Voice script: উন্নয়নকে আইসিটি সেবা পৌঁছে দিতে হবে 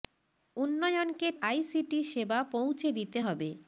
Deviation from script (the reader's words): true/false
false